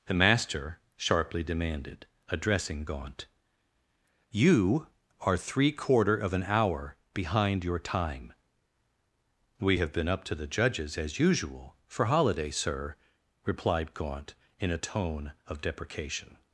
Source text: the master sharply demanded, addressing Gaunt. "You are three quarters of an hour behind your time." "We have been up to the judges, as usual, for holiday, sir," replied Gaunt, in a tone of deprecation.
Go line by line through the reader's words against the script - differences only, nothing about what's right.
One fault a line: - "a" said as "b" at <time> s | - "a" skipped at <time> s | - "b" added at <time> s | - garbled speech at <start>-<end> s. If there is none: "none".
- "quarters" said as "quarter" at 5.7 s